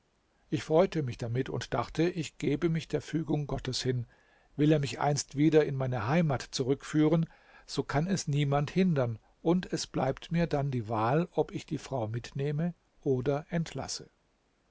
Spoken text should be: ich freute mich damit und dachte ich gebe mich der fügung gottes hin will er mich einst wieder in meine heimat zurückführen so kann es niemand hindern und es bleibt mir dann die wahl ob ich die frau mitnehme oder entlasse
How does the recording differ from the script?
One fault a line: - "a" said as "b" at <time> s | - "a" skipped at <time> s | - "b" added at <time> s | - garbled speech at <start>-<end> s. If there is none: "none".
none